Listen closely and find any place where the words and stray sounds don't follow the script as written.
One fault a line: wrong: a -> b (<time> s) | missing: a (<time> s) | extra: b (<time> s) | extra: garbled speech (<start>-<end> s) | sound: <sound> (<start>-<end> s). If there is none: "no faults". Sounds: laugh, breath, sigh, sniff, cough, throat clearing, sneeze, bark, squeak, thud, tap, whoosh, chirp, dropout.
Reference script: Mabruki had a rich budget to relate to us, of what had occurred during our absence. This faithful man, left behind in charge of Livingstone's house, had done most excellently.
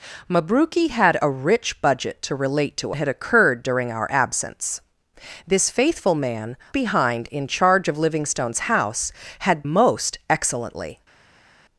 missing: us of what (2.9 s)
missing: left (6.6 s)
missing: done (9.6 s)